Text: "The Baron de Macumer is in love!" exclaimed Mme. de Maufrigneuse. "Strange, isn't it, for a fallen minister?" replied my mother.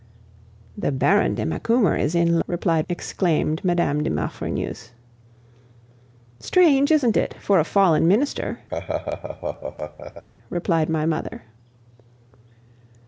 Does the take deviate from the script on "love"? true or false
true